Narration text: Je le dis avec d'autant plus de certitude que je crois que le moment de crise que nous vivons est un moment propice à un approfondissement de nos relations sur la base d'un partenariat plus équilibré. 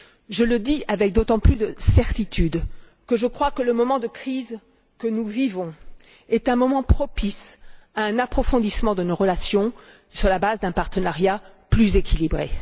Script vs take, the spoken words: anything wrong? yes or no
no